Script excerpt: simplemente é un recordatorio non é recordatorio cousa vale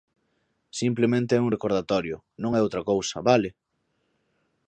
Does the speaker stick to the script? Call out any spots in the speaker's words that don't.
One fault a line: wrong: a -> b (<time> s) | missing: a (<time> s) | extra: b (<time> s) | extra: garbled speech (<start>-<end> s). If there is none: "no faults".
wrong: recordatorio -> outra (2.6 s)